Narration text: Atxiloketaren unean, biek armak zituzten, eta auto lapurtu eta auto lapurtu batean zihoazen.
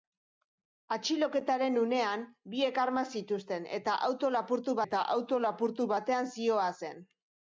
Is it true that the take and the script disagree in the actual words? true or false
false